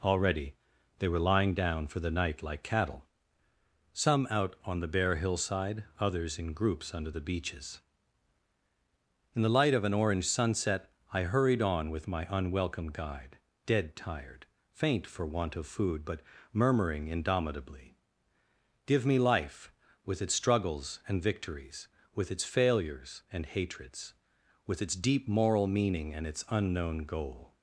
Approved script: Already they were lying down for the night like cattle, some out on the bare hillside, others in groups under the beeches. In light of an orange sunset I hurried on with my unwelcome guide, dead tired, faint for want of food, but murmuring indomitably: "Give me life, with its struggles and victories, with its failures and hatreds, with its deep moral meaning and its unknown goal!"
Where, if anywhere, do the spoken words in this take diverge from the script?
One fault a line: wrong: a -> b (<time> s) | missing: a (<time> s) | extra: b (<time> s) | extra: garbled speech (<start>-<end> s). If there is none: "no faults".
extra: the (9.4 s)